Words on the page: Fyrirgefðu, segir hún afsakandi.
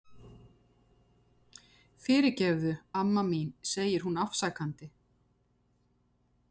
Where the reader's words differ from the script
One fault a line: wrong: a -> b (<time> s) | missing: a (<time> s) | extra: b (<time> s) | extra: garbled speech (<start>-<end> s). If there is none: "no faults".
extra: amma mín (3.0 s)